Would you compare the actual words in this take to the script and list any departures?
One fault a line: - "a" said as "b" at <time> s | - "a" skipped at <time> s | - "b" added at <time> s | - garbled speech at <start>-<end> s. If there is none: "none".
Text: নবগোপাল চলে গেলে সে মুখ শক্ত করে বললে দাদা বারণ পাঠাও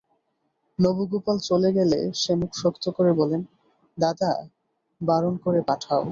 - "করে" added at 5.4 s